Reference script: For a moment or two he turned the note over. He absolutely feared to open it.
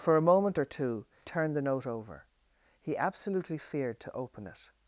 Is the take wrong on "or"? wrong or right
right